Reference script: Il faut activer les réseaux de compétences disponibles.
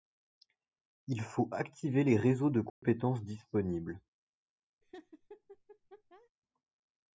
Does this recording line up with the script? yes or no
yes